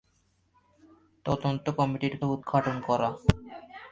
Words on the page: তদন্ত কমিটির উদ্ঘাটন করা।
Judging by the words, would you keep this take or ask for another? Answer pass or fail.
pass